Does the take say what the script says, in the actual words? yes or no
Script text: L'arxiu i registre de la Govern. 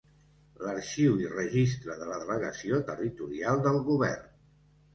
no